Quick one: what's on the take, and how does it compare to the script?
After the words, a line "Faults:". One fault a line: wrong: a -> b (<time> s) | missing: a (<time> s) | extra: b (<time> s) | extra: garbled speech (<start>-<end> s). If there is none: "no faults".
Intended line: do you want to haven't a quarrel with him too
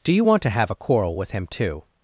do you want to have a quarrel with him too
Faults:
wrong: haven't -> have (0.5 s)